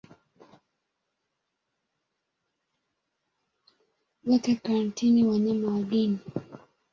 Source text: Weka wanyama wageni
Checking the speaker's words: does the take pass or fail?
fail